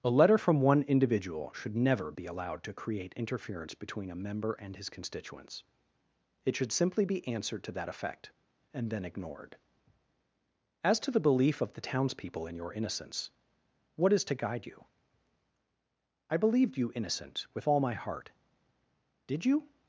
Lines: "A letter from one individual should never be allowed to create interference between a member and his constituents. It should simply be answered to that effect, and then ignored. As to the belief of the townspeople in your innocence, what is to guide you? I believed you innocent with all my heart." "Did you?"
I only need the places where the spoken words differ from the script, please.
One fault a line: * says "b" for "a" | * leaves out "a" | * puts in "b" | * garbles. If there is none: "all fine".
all fine